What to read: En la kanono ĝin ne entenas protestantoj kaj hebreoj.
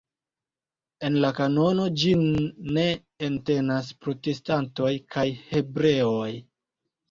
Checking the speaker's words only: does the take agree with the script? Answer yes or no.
yes